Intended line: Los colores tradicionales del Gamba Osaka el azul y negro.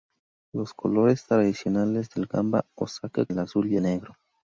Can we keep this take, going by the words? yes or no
yes